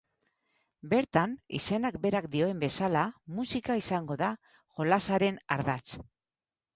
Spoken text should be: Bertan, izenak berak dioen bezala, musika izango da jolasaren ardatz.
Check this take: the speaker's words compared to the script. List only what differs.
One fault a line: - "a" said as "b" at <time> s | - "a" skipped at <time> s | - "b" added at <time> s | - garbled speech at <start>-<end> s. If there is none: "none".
none